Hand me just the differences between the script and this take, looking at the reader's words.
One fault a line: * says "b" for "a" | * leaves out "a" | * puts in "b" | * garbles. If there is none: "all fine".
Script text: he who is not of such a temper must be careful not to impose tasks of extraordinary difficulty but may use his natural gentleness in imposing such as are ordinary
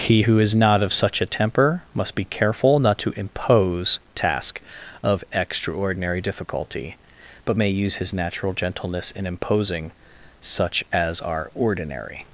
* says "task" for "tasks"